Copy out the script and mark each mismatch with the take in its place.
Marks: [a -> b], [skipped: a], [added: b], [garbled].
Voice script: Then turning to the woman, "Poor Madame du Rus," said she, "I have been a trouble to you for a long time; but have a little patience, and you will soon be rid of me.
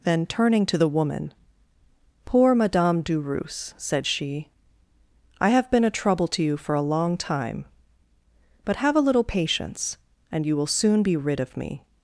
Then turning to the woman, "Poor Madame du Rus," said she, "I have been a trouble to you for a long time; but have a little patience, and you will soon be rid of me.